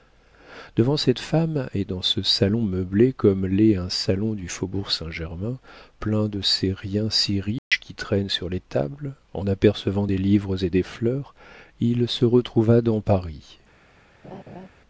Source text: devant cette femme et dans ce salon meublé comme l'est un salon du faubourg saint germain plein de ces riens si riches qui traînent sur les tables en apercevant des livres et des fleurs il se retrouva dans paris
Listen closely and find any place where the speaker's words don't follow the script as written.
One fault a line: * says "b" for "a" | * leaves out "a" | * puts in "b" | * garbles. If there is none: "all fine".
all fine